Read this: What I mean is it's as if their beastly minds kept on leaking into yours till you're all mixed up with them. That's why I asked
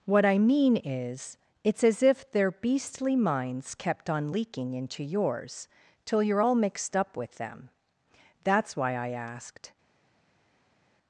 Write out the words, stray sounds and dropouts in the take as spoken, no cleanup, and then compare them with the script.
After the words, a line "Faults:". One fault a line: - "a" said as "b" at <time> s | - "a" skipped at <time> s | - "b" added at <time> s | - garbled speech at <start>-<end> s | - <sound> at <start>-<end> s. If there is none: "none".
What I mean is it's as if their beastly minds kept on leaking into yours till you're all mixed up with them. That's why I asked
Faults:
none